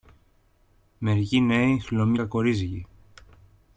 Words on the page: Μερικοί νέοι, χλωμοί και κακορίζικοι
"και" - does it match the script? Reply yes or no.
no